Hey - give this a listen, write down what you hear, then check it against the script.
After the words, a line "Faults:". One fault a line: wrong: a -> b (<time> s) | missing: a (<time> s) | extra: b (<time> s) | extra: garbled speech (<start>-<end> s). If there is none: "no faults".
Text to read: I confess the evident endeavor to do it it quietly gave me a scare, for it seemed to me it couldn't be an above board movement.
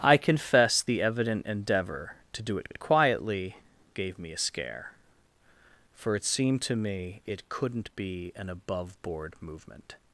I confess the evident endeavor to do it it quietly gave me a scare, for it seemed to me it couldn't be an above board movement.
Faults:
no faults